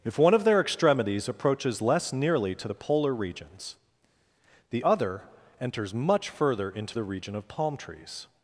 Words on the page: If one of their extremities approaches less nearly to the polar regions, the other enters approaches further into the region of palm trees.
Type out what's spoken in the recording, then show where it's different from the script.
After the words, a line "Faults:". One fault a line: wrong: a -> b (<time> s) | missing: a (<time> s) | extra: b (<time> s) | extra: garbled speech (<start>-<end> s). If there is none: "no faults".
If one of their extremities approaches less nearly to the polar regions, the other enters much further into the region of palm trees.
Faults:
wrong: approaches -> much (5.9 s)